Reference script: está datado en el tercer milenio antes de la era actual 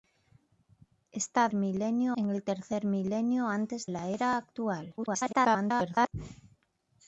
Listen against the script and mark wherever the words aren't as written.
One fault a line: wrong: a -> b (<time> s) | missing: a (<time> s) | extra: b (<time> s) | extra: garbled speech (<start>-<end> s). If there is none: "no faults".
wrong: datado -> milenio (1.5 s)
missing: de (3.9 s)
extra: garbled speech (5.0-6.1 s)